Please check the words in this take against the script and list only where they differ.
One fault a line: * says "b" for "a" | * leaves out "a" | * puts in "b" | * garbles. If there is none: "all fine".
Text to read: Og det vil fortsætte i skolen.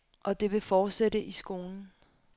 all fine